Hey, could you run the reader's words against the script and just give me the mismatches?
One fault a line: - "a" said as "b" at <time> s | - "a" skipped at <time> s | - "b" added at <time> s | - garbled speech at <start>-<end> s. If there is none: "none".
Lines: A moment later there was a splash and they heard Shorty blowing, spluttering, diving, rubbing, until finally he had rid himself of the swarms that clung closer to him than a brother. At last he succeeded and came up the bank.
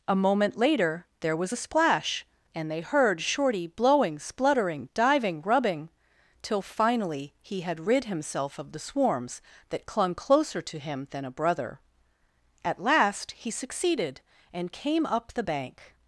- "until" said as "till" at 6.4 s